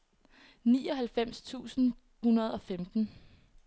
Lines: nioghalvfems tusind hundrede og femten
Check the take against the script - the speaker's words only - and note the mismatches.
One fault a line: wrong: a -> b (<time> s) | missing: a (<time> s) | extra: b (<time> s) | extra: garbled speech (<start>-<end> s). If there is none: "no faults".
no faults